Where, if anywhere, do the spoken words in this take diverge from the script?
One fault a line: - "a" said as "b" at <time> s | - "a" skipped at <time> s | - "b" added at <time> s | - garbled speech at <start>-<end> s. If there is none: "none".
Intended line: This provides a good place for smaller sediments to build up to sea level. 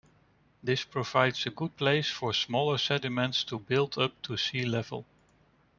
none